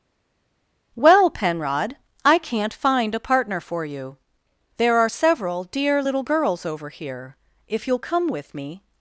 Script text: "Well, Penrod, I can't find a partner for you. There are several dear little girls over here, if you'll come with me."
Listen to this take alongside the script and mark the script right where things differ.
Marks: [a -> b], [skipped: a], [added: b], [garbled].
"Well, Penrod, I can't find a partner for you. There are several dear little girls over here, if you'll come with me."